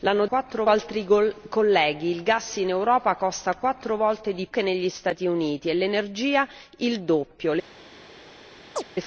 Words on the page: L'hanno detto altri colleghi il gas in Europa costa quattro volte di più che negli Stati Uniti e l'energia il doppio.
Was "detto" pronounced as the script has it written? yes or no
no